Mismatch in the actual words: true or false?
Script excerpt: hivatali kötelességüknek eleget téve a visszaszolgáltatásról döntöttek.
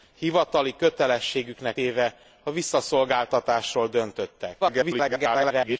true